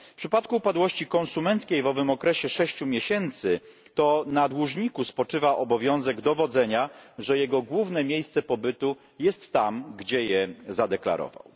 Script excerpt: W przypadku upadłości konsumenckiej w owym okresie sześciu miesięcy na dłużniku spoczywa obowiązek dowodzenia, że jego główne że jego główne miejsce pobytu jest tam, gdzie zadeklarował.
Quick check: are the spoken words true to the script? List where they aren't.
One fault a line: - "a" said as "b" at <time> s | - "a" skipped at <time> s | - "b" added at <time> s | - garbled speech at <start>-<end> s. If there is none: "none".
- "to" added at 3.9 s
- "że jego główne" skipped at 8.0 s
- "je" added at 10.2 s